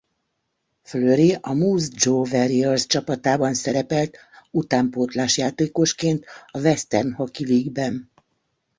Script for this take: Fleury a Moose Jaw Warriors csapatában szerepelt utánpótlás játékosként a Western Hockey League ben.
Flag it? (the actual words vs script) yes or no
no